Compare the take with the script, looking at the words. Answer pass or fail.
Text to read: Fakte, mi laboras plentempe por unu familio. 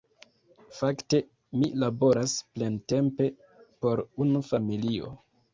pass